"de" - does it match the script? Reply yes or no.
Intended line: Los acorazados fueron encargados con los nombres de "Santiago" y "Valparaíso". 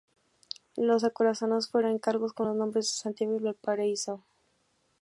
yes